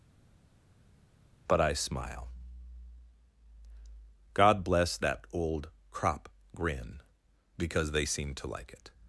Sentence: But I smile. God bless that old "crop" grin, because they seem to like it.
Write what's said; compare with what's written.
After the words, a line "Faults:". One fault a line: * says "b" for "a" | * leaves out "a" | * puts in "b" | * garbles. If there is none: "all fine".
But I smile. God bless that old "crop" grin, because they seem to like it.
Faults:
all fine